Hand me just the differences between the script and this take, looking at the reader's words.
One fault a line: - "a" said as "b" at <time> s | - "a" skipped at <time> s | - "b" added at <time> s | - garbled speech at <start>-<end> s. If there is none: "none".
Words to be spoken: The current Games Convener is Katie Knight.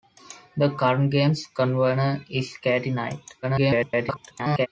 - garbled speech at 3.4-4.7 s